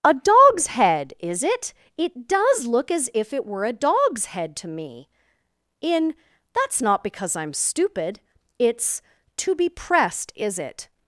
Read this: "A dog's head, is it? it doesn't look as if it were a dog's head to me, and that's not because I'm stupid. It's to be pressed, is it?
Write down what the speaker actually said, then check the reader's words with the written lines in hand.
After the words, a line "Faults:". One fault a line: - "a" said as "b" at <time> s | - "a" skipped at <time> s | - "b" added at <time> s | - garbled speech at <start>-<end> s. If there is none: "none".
"A dog's head, is it? it does look as if it were a dog's head to me, in that's not because I'm stupid. It's to be pressed, is it?
Faults:
- "doesn't" said as "does" at 2.3 s
- "and" said as "in" at 5.8 s